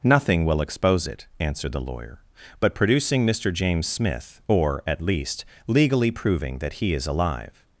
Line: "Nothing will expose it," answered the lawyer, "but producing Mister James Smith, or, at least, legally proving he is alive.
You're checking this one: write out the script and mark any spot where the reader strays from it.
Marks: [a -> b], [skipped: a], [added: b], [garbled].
"Nothing will expose it," answered the lawyer, "but producing Mister James Smith, or, at least, legally proving [added: that] he is alive.